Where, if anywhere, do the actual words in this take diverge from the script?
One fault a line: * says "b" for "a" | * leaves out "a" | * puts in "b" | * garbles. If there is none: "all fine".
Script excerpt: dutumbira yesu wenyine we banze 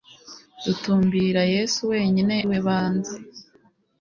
all fine